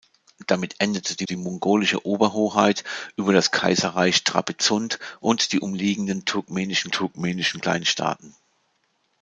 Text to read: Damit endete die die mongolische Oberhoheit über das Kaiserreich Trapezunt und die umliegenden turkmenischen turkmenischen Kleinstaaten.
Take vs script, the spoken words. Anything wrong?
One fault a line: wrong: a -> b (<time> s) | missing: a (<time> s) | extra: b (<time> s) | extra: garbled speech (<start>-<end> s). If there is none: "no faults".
no faults